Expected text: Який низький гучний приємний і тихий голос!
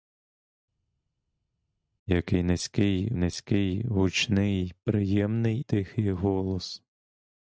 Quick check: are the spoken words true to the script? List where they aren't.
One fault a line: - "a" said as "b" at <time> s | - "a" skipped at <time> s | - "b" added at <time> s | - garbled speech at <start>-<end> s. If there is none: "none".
- "низький" added at 3.2 s
- "і" skipped at 5.6 s